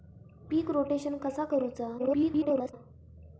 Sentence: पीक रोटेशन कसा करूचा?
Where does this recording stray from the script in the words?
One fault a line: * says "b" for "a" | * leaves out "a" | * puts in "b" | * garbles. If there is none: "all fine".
* garbles